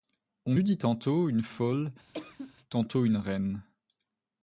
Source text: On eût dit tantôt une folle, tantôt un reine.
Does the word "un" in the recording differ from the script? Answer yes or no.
yes